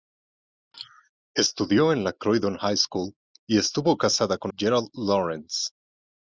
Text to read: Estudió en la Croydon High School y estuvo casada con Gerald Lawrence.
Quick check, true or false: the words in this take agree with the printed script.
true